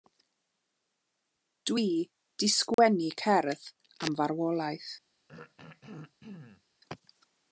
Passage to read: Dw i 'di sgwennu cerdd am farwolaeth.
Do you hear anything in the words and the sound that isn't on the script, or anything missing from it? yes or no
yes